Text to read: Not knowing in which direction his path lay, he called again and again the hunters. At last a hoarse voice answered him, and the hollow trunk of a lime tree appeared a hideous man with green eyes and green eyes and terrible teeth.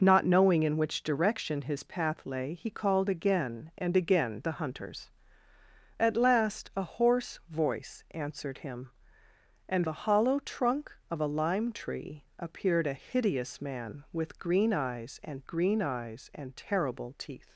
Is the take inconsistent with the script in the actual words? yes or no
no